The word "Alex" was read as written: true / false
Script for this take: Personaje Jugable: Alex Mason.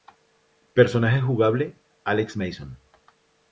true